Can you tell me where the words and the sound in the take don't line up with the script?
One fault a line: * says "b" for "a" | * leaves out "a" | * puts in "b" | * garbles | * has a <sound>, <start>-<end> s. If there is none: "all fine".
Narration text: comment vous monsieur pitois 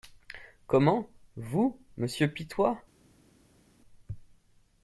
all fine